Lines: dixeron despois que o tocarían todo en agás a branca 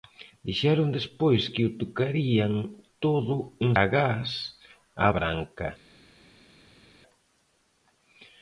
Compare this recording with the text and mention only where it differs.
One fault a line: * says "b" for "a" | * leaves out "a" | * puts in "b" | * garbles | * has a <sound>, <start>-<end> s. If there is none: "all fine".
all fine